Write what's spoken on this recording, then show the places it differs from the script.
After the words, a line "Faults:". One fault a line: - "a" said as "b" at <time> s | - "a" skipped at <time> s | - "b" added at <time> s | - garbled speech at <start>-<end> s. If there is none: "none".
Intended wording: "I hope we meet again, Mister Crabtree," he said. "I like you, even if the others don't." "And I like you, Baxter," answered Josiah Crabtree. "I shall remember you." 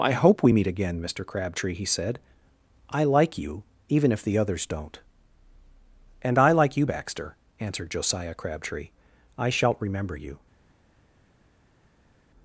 "I hope we meet again, Mister Crabtree," he said. "I like you, even if the others don't." "And I like you, Baxter," answered Josiah Crabtree. "I shalt remember you."
Faults:
- "shall" said as "shalt" at 9.5 s